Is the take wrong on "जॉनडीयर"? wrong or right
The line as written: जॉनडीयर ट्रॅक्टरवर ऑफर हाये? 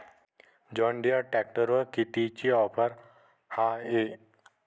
right